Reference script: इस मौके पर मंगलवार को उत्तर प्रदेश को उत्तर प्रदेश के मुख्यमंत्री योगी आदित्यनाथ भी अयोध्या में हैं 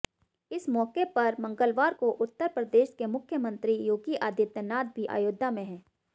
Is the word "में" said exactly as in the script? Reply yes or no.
yes